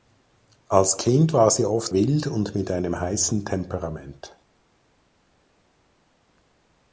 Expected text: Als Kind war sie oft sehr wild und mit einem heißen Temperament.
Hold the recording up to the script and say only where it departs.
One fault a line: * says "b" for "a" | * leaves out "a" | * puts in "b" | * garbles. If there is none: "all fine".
* leaves out "sehr"